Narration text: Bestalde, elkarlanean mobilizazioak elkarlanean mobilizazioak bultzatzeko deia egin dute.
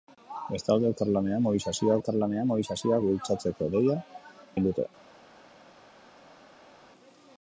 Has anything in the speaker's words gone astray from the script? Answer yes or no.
no